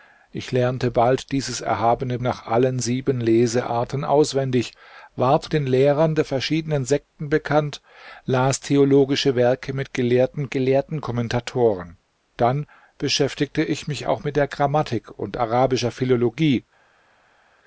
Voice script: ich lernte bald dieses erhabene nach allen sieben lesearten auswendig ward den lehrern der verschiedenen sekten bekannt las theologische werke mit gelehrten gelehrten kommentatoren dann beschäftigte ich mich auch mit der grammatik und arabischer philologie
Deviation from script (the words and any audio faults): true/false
false